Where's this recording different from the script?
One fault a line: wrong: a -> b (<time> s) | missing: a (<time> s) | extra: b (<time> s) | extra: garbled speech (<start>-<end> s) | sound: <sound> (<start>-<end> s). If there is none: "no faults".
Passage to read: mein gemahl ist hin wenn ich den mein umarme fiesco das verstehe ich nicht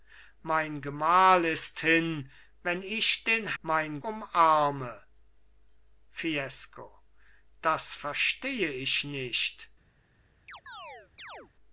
sound: chirp (10.5-11.5 s)